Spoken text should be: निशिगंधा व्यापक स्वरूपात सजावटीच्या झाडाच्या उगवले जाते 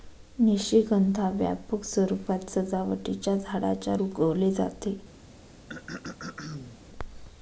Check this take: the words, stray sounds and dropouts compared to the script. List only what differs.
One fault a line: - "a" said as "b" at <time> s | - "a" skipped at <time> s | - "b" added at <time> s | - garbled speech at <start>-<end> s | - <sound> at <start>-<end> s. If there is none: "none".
- throat clearing at 5.7-6.8 s